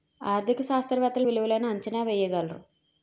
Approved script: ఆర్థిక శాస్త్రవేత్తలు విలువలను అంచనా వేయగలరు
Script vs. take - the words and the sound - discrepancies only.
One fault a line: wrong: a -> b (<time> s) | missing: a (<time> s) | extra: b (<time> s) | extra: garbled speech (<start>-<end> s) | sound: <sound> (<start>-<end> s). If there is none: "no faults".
no faults